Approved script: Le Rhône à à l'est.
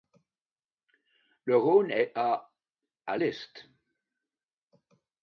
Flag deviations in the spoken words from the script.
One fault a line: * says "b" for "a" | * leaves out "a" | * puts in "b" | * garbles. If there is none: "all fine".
* puts in "est"